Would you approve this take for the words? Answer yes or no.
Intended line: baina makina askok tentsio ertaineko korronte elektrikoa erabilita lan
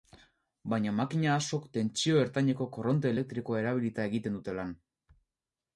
no